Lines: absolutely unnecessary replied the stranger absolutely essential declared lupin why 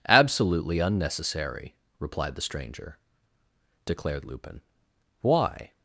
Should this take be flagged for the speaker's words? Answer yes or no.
yes